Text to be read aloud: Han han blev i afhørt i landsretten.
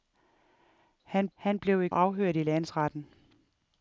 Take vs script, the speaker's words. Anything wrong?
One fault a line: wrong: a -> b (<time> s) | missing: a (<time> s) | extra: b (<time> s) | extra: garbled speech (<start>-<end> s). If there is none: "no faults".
no faults